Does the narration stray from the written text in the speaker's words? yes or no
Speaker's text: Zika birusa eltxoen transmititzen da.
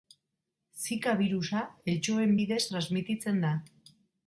yes